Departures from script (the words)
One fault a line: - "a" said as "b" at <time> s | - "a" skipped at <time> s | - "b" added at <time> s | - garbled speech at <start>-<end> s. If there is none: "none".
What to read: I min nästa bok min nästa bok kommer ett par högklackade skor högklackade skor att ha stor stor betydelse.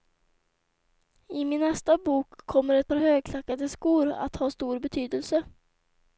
- "min nästa bok" skipped at 2.5 s
- "högklackade skor" skipped at 4.1 s
- "stor" skipped at 4.8 s